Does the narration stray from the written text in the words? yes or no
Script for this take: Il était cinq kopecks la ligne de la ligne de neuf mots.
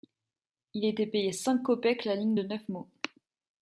yes